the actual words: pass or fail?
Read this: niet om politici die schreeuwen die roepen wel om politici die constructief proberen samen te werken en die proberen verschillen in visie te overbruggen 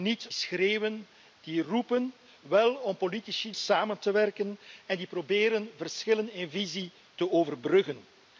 fail